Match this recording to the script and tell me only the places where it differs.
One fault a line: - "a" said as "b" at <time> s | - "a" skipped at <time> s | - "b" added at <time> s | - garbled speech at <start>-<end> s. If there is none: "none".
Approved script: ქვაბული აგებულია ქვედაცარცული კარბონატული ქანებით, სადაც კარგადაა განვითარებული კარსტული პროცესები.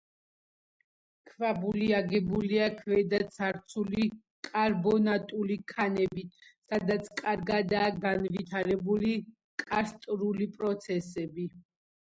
none